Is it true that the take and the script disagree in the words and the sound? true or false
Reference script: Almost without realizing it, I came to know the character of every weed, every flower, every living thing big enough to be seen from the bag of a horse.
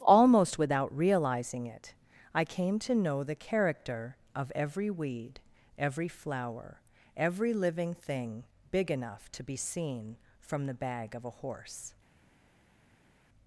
false